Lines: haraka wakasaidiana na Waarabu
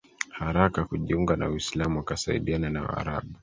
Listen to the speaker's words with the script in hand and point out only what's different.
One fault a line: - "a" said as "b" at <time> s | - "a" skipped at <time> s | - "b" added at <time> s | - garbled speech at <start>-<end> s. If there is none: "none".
- "kujiunga na Uislamu" added at 0.8 s